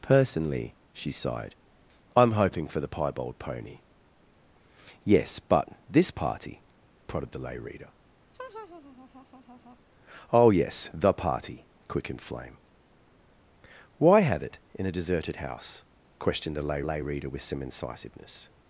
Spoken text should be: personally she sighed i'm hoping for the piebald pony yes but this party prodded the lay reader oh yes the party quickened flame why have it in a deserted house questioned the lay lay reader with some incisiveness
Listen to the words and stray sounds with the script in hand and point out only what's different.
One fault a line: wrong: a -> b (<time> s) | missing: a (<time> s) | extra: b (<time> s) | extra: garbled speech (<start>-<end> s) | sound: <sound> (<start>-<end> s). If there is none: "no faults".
sound: laugh (8.3-9.8 s)